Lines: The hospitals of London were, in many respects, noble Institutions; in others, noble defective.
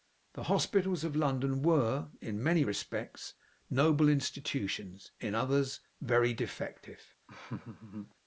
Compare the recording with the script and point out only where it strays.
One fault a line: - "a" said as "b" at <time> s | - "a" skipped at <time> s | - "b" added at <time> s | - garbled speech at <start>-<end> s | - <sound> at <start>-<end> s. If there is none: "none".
- "noble" said as "very" at 6.0 s
- laugh at 7.3-8.1 s